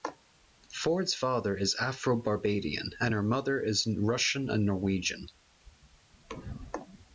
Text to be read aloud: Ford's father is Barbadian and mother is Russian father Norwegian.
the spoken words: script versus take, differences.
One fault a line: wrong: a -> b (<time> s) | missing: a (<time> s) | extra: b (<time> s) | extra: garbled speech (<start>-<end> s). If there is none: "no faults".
extra: Afro (1.8 s)
extra: her (3.1 s)
wrong: father -> and (4.5 s)